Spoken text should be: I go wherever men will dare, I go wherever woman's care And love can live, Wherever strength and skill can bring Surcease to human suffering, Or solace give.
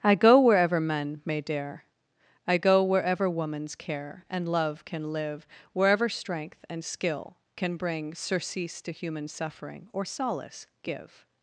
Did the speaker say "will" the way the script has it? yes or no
no